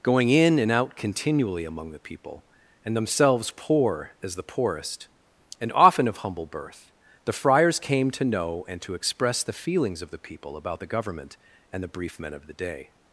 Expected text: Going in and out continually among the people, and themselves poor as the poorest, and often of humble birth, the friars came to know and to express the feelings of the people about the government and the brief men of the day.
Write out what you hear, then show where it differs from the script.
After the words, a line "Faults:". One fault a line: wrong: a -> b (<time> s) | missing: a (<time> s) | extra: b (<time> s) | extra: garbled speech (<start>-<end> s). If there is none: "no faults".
Going in and out continually among the people, and themselves poor as the poorest, and often of humble birth, the friars came to know and to express the feelings of the people about the government and the brief men of the day.
Faults:
no faults